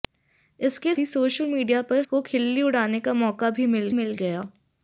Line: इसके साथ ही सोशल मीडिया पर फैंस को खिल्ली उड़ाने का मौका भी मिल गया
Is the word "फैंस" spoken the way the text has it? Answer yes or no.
no